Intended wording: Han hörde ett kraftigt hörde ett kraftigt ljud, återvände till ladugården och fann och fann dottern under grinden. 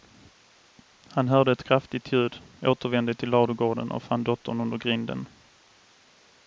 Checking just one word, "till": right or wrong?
right